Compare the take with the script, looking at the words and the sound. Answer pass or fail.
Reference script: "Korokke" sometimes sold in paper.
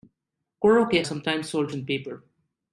pass